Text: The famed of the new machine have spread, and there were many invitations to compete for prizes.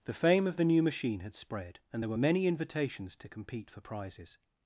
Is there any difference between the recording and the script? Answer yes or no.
yes